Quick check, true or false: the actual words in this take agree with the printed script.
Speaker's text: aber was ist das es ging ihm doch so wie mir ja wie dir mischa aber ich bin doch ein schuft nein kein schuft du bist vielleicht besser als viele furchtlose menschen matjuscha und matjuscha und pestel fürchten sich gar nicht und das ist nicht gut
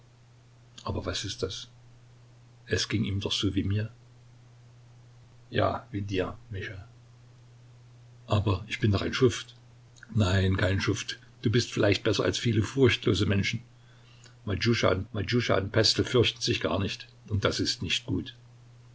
true